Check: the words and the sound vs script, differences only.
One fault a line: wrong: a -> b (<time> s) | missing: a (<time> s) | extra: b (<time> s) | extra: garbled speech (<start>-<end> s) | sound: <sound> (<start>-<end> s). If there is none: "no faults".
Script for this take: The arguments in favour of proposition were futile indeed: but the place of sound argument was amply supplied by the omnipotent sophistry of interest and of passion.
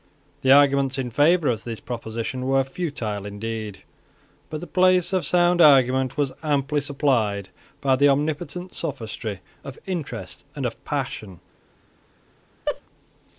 extra: this (1.6 s)
sound: laugh (12.7-12.8 s)